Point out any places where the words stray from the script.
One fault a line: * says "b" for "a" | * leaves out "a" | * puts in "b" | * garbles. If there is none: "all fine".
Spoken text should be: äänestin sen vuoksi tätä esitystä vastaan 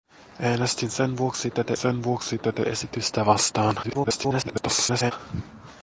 * puts in "sen vuoksi tätä"
* garbles